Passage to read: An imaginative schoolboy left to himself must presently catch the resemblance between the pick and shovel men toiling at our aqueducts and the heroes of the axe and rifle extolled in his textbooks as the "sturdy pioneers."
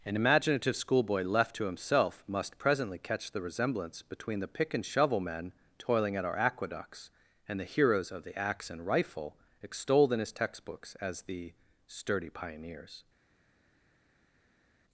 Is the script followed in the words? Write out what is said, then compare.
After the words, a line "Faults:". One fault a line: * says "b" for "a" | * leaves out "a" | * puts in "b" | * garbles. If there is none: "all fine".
An imaginative schoolboy left to himself must presently catch the resemblance between the pick and shovel men toiling at our aqueducts and the heroes of the axe and rifle extolled in his textbooks as the "sturdy pioneers."
Faults:
all fine